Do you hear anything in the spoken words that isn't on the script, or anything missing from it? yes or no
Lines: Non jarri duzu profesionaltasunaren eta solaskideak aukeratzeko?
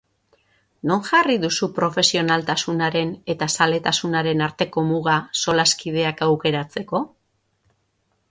yes